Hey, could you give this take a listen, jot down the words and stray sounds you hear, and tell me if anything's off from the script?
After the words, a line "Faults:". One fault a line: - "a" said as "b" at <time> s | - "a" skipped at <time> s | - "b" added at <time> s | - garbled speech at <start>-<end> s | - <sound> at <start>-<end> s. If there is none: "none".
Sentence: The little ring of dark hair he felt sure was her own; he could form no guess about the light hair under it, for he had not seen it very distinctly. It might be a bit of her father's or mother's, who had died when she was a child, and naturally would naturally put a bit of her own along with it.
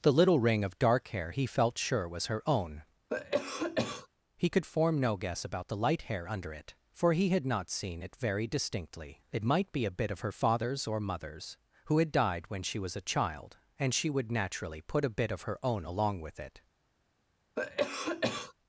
The little ring of dark hair he felt sure was her own; he could form no guess about the light hair under it, for he had not seen it very distinctly. It might be a bit of her father's or mother's, who had died when she was a child, and she would naturally put a bit of her own along with it.
Faults:
- cough at 3.1-4.1 s
- "naturally" said as "she" at 13.9 s
- cough at 17.6-18.5 s